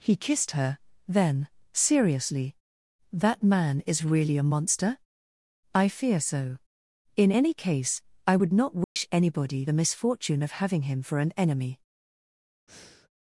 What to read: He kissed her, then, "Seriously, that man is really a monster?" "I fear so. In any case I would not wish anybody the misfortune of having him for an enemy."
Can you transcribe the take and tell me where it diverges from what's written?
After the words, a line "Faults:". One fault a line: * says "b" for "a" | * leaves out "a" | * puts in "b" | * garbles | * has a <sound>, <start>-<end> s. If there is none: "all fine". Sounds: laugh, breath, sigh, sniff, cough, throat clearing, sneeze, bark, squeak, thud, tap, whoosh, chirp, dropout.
He kissed her, then, "Seriously, that man is really a monster?" "I fear so. In any case I would not wish anybody the misfortune of having him for an enemy."
Faults:
* has a dropout, 8.8-9.0 s
* has a breath, 12.7-13.1 s